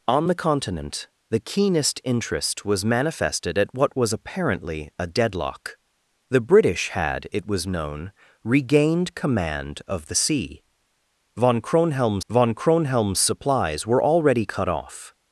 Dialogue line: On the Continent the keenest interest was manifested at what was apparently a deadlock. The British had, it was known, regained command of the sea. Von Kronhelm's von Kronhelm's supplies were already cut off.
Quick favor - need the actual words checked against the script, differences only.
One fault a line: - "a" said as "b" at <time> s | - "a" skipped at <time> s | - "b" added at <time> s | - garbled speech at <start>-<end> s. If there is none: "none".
none